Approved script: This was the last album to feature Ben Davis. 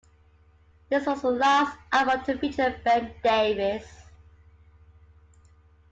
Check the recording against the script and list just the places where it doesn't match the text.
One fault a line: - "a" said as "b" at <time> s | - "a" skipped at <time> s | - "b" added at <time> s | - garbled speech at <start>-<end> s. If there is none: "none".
none